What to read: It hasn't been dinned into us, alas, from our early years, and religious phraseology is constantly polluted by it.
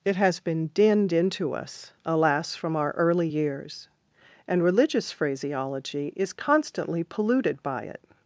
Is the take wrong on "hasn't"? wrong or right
wrong